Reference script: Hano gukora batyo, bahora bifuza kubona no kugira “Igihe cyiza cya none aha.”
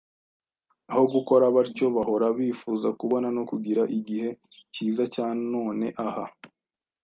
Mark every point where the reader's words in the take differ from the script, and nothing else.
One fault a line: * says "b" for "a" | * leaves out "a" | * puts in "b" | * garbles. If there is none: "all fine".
* says "Aho" for "Hano"